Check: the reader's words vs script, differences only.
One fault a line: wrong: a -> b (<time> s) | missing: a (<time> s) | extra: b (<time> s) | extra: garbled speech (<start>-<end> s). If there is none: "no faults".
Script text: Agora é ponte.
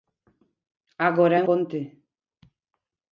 no faults